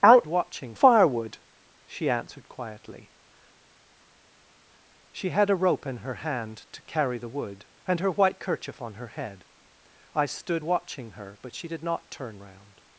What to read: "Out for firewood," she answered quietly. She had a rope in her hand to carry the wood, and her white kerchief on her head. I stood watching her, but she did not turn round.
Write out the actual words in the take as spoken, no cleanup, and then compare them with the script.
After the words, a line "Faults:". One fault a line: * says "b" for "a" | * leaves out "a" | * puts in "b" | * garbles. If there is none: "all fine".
"Out watching firewood," she answered quietly. She had a rope in her hand to carry the wood, and her white kerchief on her head. I stood watching her, but she did not turn round.
Faults:
* says "watching" for "for"